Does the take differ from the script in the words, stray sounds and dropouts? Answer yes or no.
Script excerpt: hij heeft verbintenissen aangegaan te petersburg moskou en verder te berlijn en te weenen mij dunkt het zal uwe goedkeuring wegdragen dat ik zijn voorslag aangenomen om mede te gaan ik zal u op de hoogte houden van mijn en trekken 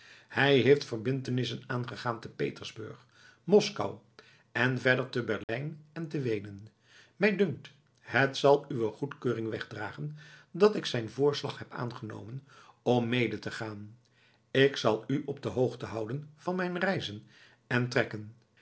yes